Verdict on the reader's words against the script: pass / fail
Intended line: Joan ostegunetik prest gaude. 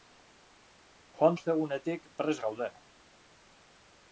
pass